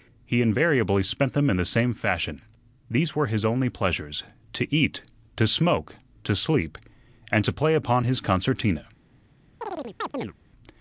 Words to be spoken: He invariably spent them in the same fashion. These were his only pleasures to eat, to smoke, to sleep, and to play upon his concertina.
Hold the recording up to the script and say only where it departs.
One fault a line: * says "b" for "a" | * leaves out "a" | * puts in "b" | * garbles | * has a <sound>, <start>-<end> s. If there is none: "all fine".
* has a chirp, 9.6-10.3 s